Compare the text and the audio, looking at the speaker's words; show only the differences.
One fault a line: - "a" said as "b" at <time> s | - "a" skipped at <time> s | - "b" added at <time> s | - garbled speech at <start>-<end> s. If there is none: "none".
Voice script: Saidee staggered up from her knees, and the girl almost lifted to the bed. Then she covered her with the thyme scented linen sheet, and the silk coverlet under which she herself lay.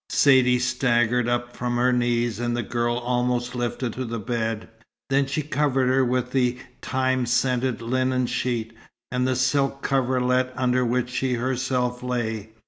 none